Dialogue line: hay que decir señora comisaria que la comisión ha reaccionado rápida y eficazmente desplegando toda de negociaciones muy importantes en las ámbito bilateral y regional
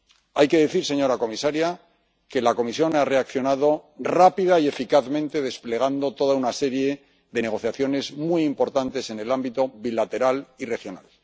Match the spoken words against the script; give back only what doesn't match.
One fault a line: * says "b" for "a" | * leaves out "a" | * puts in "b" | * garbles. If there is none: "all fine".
* puts in "una serie"
* says "el" for "las"